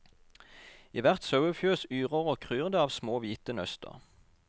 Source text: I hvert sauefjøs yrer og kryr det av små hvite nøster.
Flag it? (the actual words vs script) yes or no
no